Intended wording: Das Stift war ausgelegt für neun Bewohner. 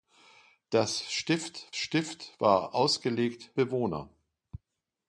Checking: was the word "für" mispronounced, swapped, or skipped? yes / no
yes